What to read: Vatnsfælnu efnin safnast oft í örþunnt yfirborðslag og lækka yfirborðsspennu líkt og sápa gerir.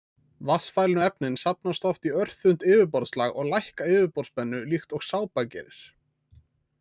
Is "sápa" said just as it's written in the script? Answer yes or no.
yes